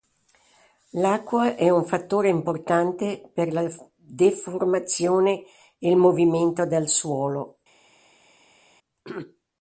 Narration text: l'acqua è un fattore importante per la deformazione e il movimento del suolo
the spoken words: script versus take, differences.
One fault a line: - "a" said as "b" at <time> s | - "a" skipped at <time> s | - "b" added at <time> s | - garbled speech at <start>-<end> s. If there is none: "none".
none